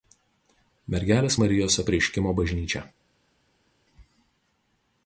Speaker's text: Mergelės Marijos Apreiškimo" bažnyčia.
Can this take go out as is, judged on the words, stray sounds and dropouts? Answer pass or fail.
pass